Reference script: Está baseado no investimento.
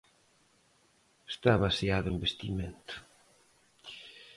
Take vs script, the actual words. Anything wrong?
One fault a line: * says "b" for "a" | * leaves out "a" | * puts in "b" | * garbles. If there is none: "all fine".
* leaves out "no"